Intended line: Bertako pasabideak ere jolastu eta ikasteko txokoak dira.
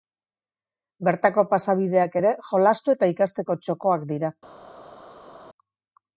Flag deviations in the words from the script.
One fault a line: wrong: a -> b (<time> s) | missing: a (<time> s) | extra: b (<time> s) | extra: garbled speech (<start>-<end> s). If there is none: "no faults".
no faults